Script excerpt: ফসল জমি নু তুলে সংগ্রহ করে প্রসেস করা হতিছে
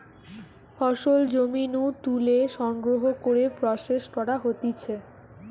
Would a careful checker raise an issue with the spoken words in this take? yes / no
no